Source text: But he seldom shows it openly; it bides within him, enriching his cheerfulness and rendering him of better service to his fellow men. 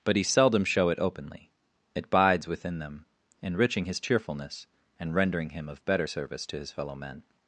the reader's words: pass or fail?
fail